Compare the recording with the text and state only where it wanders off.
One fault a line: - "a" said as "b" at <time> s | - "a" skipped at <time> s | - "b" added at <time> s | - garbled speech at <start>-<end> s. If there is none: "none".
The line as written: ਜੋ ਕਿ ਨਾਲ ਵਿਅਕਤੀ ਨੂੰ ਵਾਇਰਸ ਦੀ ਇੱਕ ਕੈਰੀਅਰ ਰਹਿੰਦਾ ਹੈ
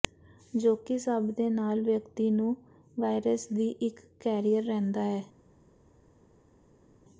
- "ਸਭ ਦੇ" added at 1.0 s